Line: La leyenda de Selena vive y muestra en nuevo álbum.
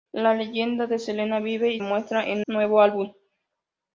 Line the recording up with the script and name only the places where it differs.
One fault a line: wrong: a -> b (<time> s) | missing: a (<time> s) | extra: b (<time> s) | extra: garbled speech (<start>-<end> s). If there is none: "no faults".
no faults